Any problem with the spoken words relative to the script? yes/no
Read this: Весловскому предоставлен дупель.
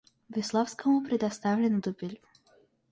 no